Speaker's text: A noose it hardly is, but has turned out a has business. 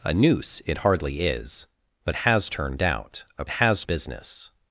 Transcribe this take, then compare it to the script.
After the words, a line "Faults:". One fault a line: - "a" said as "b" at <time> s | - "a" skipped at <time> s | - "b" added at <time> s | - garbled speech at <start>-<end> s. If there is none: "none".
A noose it hardly is, but has turned out a has business.
Faults:
none